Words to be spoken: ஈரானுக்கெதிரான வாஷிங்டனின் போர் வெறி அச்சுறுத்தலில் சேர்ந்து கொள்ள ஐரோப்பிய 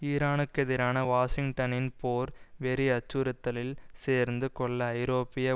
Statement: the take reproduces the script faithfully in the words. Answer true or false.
true